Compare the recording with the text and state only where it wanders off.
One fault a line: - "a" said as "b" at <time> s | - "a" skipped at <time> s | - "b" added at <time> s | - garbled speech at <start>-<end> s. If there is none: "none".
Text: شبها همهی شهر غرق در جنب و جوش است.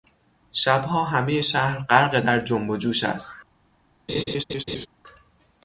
none